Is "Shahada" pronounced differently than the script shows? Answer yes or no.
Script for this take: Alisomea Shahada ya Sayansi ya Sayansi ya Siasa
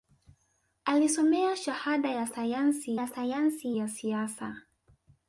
no